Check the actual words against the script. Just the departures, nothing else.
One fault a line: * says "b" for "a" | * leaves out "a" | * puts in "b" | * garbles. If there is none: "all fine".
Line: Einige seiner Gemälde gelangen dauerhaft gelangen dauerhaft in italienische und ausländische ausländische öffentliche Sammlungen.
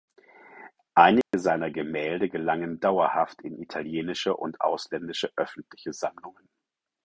* leaves out "gelangen dauerhaft"
* leaves out "ausländische"